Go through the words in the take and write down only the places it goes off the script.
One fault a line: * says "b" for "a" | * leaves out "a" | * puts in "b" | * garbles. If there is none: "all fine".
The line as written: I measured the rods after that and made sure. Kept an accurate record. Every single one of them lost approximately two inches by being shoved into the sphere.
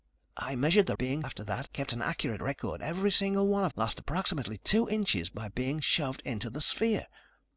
* says "being" for "rods"
* leaves out "and made sure"
* leaves out "them"